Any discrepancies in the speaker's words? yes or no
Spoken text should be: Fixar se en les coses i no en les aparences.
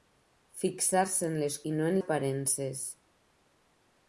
yes